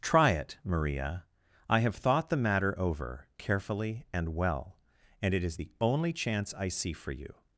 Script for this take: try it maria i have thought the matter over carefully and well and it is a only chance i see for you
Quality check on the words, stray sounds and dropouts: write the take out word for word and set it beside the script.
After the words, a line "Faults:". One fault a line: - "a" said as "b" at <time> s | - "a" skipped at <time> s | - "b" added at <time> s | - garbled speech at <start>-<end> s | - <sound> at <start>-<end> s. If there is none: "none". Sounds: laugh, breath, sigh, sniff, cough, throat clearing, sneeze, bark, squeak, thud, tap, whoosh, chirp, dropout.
try it maria i have thought the matter over carefully and well and it is the only chance i see for you
Faults:
- "a" said as "the" at 5.5 s